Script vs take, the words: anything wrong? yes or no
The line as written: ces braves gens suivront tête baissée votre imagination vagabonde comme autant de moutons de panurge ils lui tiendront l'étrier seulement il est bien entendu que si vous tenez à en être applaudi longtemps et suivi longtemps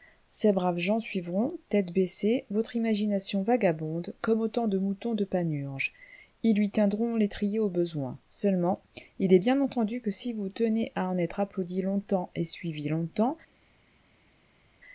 yes